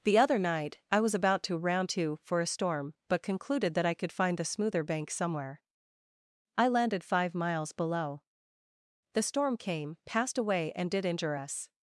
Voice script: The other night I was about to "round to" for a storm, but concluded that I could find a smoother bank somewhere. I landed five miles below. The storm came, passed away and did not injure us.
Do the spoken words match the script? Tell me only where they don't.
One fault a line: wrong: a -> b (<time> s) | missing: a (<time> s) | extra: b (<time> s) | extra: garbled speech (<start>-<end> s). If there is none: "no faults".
wrong: a -> the (4.4 s)
missing: not (11.1 s)